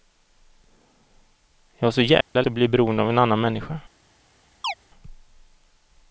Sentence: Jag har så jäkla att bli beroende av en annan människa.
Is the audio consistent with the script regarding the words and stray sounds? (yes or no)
no